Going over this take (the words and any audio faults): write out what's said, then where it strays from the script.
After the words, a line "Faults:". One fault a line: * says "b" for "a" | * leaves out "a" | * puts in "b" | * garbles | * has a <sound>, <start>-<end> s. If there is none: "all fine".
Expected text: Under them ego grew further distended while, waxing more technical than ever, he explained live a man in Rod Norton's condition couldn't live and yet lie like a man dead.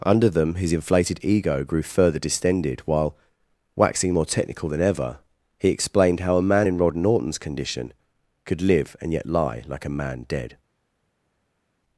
Under them his inflated ego grew further distended while, waxing more technical than ever, he explained how a man in Rod Norton's condition could live and yet lie like a man dead.
Faults:
* puts in "his inflated"
* says "how" for "live"
* says "could" for "couldn't"